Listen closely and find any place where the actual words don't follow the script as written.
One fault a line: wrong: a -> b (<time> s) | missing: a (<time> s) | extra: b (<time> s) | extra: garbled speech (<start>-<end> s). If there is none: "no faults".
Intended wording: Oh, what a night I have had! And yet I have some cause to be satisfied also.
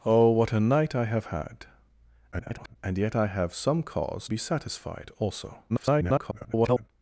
extra: garbled speech (2.3-2.8 s)
missing: to (4.3 s)
extra: garbled speech (5.7-6.9 s)